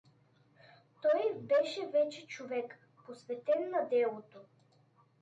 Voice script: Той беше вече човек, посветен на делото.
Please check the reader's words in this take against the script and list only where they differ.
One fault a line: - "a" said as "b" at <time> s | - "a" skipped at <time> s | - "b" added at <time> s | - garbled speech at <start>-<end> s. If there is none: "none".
none